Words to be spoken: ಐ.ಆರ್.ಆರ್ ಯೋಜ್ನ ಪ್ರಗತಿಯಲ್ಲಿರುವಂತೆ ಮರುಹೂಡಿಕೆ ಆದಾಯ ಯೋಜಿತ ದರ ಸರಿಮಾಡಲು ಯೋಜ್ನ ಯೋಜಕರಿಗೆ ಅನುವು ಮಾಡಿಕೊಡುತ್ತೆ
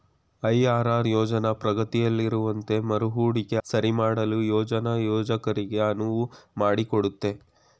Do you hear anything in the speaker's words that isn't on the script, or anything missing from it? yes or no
yes